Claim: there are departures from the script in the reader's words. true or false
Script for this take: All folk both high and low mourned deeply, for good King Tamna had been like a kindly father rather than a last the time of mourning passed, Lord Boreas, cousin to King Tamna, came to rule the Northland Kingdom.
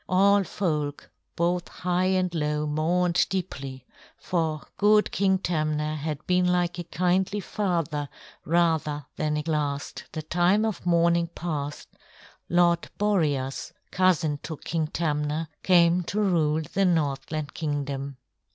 false